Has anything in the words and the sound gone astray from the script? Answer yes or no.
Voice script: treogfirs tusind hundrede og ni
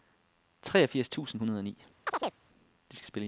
yes